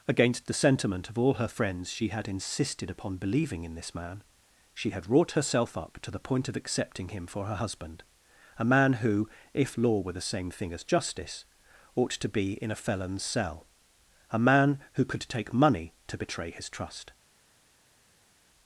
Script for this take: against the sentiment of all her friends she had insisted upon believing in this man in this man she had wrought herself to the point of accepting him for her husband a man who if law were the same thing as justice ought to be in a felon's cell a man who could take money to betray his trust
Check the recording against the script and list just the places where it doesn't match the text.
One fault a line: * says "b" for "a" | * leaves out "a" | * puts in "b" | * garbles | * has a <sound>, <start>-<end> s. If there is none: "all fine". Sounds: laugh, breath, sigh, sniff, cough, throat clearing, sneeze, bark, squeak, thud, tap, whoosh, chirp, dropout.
* leaves out "in this man"
* puts in "up"